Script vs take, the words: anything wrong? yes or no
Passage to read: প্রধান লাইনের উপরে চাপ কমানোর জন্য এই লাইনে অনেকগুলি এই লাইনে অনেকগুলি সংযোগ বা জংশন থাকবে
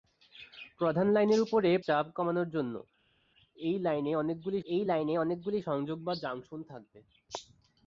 no